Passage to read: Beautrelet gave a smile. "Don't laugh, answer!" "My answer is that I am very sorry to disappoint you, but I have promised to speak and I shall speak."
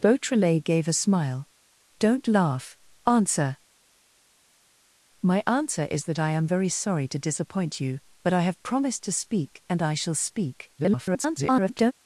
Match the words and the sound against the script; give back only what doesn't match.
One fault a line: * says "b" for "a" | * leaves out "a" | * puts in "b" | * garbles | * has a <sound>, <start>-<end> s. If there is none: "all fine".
* garbles